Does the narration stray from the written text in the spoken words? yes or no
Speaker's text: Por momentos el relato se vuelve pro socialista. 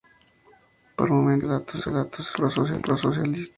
yes